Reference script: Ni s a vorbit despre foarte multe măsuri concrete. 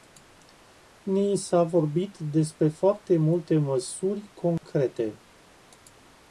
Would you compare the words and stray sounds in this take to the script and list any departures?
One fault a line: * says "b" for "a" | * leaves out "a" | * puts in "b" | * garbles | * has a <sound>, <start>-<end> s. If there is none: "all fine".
* has a dropout, 4.6-4.6 s